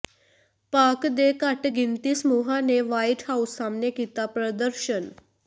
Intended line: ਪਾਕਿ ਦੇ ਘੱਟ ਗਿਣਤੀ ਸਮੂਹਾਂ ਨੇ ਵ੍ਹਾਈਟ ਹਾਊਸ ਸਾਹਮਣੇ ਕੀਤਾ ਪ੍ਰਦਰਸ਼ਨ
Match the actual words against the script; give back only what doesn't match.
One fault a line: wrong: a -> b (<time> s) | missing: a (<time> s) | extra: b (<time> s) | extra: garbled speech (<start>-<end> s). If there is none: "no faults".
no faults